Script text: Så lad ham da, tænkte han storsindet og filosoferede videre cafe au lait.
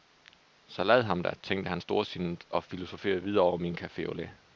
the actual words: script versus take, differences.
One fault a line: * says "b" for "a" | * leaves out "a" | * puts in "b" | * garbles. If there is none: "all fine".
* puts in "over min"